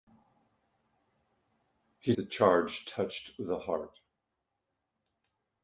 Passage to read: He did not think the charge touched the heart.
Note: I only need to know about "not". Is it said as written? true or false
false